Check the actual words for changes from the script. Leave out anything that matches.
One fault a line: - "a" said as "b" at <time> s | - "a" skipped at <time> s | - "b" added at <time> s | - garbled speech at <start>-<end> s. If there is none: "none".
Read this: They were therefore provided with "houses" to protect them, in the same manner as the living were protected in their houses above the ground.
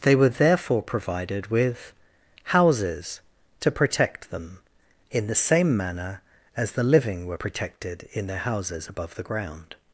none